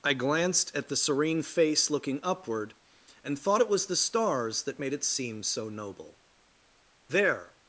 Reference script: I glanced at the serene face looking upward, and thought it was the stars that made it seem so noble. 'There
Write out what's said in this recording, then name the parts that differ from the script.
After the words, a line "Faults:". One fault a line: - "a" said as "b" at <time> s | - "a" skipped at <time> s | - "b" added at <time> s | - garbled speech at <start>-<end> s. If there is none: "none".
I glanced at the serene face looking upward, and thought it was the stars that made it seem so noble. 'There
Faults:
none